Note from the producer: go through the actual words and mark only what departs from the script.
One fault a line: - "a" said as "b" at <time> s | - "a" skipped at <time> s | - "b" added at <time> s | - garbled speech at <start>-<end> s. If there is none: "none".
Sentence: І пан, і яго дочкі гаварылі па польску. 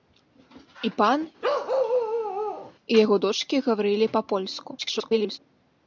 - garbled speech at 4.8-5.4 s